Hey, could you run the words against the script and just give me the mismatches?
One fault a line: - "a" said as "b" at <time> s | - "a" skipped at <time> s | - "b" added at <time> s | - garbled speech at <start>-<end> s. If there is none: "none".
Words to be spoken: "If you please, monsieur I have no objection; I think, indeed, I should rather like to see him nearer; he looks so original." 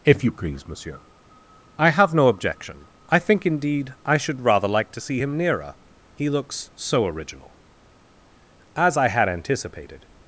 - "As I had anticipated" added at 8.7 s